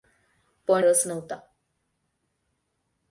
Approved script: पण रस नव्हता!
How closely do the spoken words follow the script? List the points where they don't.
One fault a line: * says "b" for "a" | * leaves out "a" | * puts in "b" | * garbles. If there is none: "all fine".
all fine